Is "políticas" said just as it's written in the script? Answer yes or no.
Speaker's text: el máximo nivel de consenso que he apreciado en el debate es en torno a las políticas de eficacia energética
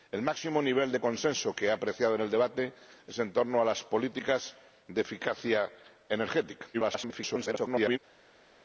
yes